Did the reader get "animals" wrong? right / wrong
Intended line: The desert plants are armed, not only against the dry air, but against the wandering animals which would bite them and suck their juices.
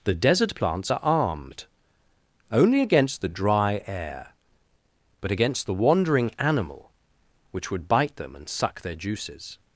wrong